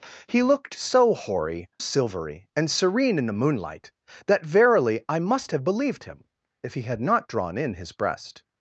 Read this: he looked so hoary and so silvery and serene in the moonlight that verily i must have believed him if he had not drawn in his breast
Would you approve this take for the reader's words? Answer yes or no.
no